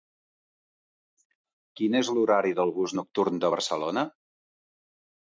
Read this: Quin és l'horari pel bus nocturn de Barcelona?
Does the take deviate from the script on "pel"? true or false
true